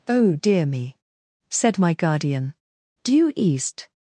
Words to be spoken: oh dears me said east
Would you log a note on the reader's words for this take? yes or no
yes